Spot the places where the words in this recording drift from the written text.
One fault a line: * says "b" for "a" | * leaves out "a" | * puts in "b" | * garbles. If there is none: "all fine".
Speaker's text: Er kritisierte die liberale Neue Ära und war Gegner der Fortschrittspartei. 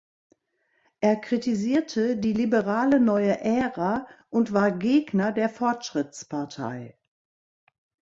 all fine